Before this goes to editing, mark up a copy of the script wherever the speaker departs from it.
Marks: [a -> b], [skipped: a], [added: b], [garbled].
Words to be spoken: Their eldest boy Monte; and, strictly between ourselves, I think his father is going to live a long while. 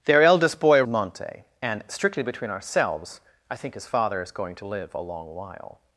Their eldest boy Monte; and, strictly between ourselves, I think his father is going to live a long while.